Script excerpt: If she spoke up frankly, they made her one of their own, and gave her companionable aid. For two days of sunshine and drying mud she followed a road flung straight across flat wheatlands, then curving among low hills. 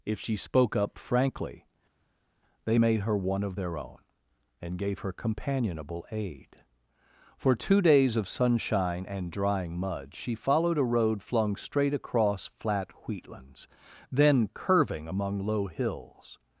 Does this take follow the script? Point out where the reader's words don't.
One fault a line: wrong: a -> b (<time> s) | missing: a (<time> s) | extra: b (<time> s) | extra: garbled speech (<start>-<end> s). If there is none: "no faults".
no faults